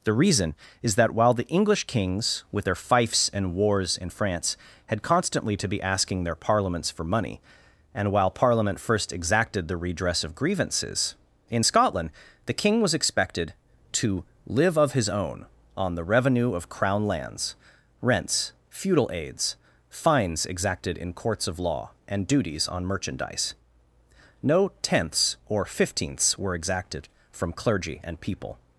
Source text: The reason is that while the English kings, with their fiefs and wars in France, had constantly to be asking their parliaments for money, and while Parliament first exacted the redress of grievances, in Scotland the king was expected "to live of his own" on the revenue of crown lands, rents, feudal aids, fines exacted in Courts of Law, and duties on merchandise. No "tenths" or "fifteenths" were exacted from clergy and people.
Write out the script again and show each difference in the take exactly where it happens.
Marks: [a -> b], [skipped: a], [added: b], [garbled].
The reason is that while the English kings, with their fiefs and wars in France, had constantly to be asking their parliaments for money, and while Parliament first exacted the redress of grievances, in Scotland the king was expected "to live of his own" on the revenue of crown lands, rents, feudal aids, fines exacted in Courts of Law, and duties on merchandise. No "tenths" or "fifteenths" were exacted from clergy and people.